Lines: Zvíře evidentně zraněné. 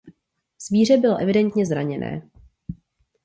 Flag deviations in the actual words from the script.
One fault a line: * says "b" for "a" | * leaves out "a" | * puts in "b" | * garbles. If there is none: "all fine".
* puts in "bylo"